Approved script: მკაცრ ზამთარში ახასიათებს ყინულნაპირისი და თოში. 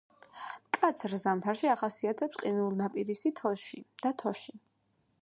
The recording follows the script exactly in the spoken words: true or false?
true